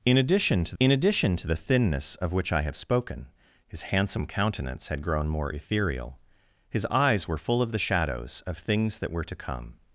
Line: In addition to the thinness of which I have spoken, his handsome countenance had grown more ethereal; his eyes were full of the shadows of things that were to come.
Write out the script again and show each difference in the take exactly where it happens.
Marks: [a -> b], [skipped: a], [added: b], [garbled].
In addition to [added: in addition to] the thinness of which I have spoken, his handsome countenance had grown more ethereal; his eyes were full of the shadows of things that were to come.